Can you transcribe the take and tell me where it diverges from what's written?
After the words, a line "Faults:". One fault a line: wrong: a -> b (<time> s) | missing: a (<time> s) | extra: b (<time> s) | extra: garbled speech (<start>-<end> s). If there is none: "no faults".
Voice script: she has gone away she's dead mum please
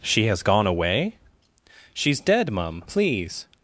she has gone away she's dead mum please
Faults:
no faults